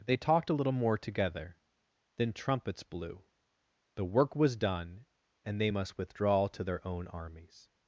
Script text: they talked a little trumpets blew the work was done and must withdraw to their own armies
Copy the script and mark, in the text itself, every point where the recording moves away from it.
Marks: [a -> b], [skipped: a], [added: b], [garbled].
they talked a little [added: more together then] trumpets blew the work was done and [added: they] must withdraw to their own armies